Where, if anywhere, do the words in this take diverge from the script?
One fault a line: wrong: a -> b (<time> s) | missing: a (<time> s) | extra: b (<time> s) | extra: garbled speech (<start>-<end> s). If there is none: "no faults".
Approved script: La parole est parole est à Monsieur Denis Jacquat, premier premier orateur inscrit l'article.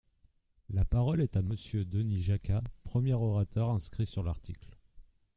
missing: parole est (1.4 s)
missing: premier (3.1 s)
extra: sur (4.1 s)